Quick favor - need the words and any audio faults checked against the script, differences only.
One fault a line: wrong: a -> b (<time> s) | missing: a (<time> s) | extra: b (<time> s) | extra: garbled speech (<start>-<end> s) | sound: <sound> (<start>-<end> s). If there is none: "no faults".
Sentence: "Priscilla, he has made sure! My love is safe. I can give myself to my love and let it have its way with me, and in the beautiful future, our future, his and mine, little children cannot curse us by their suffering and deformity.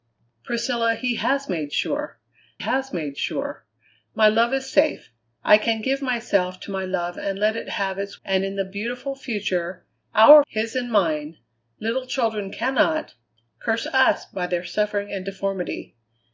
extra: has made sure (2.6 s)
missing: way with me (8.2 s)
missing: future (10.4 s)